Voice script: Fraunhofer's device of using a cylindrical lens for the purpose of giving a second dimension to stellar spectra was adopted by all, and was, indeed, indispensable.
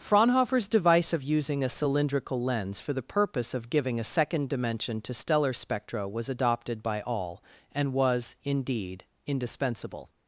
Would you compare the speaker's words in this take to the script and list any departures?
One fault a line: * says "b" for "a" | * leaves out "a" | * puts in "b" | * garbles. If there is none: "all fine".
all fine